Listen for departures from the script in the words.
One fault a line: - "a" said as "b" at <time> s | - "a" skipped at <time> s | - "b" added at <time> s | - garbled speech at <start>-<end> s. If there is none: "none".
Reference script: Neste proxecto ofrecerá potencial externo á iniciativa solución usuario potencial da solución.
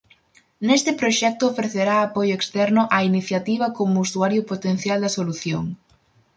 - "potencial" said as "apoio" at 2.0 s
- "solución" said as "como" at 3.8 s